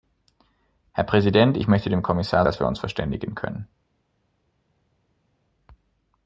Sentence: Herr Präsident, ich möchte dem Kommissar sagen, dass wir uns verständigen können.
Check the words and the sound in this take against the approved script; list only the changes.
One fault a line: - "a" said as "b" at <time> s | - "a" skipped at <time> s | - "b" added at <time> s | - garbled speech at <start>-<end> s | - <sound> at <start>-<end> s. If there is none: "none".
- "sagen" skipped at 2.5 s